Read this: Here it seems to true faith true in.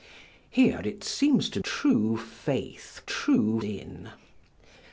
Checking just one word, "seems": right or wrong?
right